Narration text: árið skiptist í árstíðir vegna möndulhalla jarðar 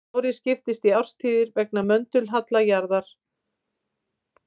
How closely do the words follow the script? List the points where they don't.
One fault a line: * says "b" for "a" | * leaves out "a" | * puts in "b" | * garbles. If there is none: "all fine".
all fine